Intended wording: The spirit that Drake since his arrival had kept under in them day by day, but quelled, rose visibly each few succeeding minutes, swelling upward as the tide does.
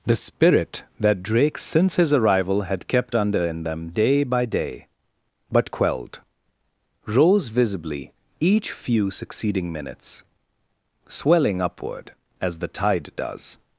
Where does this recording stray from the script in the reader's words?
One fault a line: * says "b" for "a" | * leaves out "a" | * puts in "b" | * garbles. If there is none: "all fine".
all fine